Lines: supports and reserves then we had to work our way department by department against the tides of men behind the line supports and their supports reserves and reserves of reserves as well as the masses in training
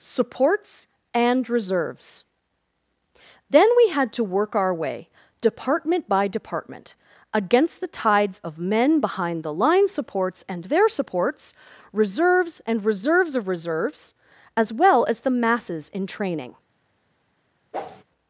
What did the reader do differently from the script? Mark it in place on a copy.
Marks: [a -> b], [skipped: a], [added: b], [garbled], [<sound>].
supports and reserves then we had to work our way department by department against the tides of men behind the line supports and their supports reserves and reserves of reserves as well as the masses in training [whoosh]